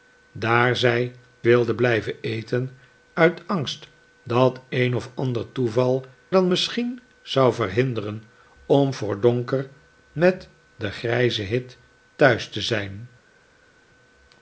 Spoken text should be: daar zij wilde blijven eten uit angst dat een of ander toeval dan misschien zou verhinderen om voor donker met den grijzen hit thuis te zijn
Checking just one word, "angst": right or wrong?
right